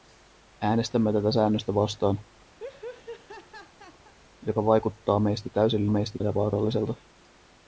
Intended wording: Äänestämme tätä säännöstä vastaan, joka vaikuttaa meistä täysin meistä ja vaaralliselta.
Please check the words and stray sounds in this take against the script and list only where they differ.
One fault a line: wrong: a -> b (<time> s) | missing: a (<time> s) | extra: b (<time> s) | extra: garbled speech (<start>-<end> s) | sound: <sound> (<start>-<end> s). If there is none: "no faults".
sound: laugh (2.6-4.1 s)